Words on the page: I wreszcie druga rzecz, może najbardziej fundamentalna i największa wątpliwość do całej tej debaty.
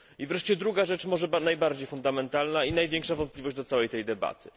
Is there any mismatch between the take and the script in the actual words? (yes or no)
no